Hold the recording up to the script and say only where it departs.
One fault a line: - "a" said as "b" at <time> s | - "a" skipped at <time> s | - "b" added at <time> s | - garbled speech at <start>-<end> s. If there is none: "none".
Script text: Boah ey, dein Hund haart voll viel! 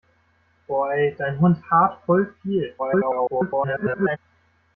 - garbled speech at 2.8-4.2 s